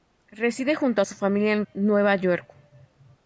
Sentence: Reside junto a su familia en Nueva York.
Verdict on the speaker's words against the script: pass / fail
pass